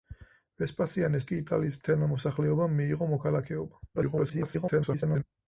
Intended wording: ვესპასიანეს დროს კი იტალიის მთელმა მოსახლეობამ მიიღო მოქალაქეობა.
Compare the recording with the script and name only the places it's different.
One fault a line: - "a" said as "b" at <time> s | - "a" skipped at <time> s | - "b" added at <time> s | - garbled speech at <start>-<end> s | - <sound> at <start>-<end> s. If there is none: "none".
- "დროს" skipped at 1.3 s
- garbled speech at 4.0-5.2 s